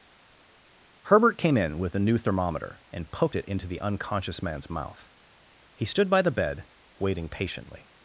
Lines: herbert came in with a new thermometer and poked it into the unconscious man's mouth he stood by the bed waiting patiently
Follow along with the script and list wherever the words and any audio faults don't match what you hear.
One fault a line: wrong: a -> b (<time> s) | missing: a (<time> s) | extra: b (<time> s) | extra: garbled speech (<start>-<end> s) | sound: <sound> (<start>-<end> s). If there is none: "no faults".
no faults